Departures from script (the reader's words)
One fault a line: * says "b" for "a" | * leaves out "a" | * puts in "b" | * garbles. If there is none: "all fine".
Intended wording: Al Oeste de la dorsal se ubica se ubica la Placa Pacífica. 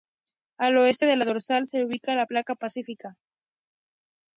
* leaves out "se ubica"